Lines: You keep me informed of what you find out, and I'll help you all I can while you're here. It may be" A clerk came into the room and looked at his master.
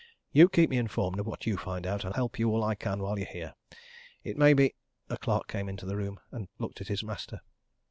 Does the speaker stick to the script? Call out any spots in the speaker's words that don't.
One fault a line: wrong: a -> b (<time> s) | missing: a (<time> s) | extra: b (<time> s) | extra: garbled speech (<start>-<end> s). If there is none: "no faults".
missing: I'll (2.1 s)